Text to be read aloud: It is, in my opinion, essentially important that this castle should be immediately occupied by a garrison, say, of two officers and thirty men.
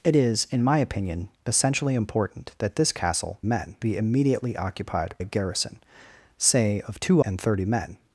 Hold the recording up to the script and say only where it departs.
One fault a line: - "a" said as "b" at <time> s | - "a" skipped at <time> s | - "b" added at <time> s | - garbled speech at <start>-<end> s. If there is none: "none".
- "should" said as "men" at 3.4 s
- "by" skipped at 5.1 s
- "officers" skipped at 7.2 s